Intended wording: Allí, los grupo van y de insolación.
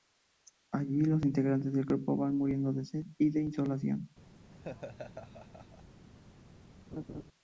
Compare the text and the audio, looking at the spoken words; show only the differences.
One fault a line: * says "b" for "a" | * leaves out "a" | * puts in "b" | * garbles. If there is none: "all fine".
* puts in "integrantes del"
* puts in "muriendo de sed"